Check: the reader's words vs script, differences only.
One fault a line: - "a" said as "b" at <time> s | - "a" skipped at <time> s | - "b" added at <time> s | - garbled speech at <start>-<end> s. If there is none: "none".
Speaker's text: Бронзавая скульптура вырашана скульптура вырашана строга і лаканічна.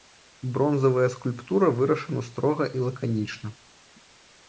- "скульптура вырашана" skipped at 2.2 s